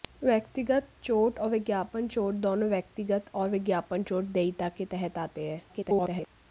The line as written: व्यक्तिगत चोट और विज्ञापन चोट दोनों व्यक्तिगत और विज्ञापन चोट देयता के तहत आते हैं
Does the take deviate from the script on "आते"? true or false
false